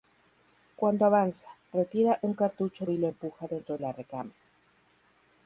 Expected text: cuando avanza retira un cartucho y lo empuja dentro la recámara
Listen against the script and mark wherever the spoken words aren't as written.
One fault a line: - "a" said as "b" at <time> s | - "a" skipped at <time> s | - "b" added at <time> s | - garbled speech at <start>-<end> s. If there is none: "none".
none